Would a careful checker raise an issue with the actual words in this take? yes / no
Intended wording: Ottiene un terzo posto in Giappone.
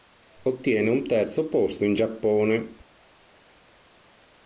no